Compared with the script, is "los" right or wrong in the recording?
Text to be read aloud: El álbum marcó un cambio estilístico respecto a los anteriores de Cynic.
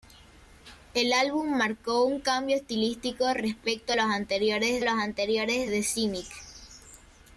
right